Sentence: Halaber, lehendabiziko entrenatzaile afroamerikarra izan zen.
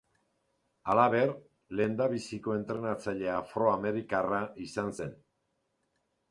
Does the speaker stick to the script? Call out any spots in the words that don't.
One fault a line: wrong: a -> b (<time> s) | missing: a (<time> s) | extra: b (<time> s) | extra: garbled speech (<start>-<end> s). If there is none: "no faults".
no faults